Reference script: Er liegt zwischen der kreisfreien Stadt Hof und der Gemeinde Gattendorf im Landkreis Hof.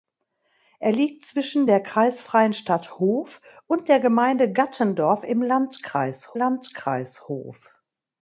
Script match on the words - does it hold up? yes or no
no